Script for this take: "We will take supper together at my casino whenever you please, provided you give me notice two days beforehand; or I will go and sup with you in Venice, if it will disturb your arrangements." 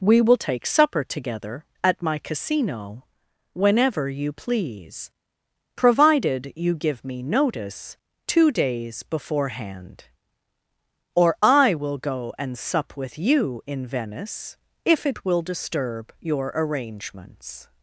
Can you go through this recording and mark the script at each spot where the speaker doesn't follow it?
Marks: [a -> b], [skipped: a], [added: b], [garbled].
"We will take supper together at my casino whenever you please, provided you give me notice two days beforehand; or I will go and sup with you in Venice, if it will disturb your arrangements."